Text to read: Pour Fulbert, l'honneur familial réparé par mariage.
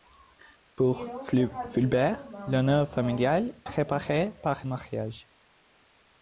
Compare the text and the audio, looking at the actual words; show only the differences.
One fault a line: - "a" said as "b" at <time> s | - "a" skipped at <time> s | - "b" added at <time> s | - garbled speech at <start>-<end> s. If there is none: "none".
none